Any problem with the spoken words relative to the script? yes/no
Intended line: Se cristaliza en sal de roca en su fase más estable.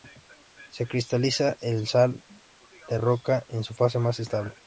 no